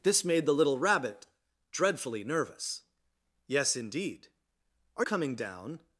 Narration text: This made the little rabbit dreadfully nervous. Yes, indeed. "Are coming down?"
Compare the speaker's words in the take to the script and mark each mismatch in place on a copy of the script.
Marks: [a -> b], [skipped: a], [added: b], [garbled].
This made the little rabbit dreadfully nervous. Yes, indeed. "Are coming down?"